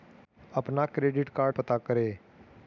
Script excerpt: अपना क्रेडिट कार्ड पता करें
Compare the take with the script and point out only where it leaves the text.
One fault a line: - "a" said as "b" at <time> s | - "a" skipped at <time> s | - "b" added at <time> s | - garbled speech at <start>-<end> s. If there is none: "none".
none